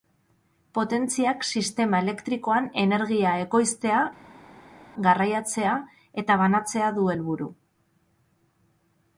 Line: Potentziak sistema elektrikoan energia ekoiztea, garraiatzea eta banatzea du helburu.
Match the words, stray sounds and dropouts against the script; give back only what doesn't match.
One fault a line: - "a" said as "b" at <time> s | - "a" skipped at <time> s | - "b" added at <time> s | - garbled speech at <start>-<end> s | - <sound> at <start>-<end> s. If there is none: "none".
none